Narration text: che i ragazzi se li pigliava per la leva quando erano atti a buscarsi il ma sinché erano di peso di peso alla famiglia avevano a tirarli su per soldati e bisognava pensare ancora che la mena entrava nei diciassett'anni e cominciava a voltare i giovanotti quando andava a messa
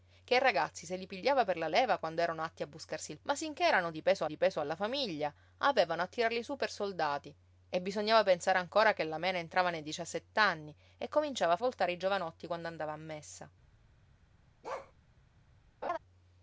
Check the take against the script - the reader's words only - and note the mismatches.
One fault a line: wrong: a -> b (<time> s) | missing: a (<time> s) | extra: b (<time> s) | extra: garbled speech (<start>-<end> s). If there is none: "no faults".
no faults